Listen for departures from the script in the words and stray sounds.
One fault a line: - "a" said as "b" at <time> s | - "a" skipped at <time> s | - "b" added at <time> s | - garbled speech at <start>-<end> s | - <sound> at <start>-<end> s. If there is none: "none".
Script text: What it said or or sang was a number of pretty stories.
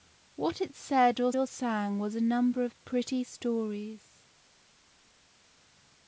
none